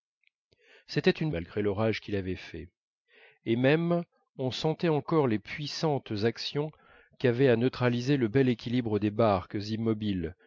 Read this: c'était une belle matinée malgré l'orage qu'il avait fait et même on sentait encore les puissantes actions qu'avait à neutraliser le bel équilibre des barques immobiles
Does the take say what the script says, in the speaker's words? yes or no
no